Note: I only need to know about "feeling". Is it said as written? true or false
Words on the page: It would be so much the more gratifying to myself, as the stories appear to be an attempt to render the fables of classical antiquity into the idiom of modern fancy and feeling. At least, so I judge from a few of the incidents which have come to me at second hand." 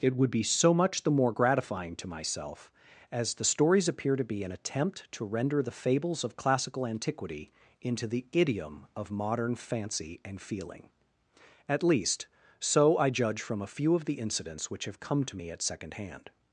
true